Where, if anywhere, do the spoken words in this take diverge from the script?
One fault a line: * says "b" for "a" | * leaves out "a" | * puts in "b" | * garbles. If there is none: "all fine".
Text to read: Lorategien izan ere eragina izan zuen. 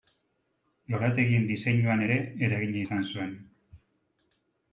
* says "diseinuan" for "izan"